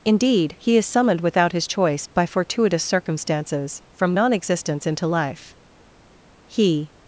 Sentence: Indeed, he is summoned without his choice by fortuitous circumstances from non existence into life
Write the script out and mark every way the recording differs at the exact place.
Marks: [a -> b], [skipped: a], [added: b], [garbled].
Indeed, he is summoned without his choice by fortuitous circumstances from non existence into life [added: He]